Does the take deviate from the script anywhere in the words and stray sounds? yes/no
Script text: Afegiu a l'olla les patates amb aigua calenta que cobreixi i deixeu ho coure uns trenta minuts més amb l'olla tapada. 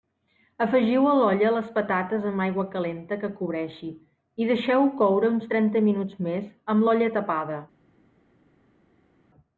no